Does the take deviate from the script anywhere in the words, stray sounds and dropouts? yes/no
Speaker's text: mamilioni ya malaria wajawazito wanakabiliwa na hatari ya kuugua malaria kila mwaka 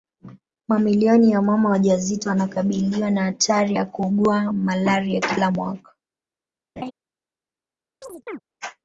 yes